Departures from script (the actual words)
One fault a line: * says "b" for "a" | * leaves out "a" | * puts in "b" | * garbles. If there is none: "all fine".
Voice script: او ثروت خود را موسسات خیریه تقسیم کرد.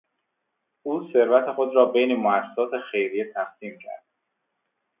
* puts in "بین"